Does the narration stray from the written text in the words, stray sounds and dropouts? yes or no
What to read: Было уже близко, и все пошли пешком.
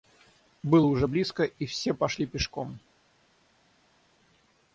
no